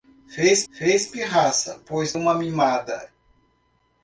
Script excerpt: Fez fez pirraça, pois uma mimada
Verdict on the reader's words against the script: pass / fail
pass